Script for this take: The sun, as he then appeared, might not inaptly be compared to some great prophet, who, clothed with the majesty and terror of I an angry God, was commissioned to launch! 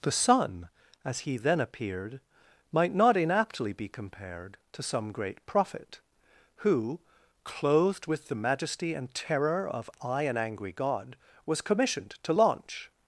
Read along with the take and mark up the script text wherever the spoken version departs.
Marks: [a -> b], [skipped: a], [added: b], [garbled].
The sun, as he then appeared, might not inaptly be compared to some great prophet, who, clothed with the majesty and terror of I an angry God, was commissioned to launch!